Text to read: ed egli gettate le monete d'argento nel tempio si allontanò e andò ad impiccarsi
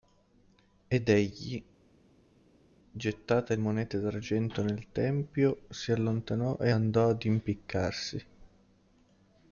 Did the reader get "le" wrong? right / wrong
wrong